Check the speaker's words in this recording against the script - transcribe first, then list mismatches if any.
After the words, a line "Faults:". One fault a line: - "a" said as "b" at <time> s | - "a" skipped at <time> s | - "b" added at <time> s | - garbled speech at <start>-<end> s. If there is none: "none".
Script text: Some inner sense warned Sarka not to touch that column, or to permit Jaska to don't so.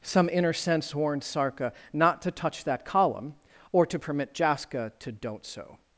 Some inner sense warned Sarka not to touch that column, or to permit Jaska to don't so.
Faults:
none